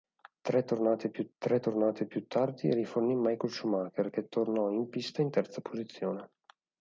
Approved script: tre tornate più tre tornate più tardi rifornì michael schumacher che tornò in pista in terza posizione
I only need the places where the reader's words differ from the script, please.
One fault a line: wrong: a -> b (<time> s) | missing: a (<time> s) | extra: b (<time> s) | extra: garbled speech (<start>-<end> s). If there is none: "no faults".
no faults